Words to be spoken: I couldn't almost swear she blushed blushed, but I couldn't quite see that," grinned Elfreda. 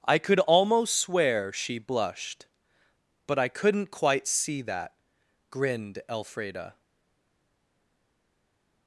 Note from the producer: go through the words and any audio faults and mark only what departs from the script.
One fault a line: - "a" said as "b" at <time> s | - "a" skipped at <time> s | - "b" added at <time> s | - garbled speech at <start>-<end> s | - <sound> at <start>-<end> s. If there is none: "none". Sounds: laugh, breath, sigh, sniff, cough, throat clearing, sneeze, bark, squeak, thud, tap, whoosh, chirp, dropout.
- "couldn't" said as "could" at 0.2 s
- "blushed" skipped at 2.5 s